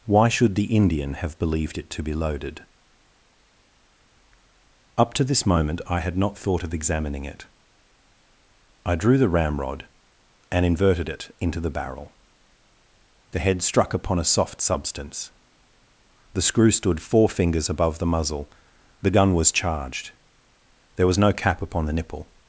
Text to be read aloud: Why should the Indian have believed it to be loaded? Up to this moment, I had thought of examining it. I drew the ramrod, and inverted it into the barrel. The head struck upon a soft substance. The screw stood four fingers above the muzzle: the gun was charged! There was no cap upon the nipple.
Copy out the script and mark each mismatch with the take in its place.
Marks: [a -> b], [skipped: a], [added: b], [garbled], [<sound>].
Why should the Indian have believed it to be loaded? Up to this moment, I had [added: not] thought of examining it. I drew the ramrod, and inverted it into the barrel. The head struck upon a soft substance. The screw stood four fingers above the muzzle: the gun was charged! There was no cap upon the nipple.